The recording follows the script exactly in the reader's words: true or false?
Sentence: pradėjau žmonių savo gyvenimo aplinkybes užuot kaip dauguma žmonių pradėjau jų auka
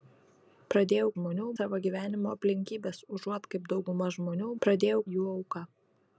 true